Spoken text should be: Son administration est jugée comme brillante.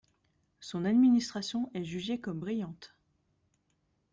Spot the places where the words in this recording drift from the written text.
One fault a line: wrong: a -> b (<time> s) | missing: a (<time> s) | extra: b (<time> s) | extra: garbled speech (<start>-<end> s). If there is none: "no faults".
no faults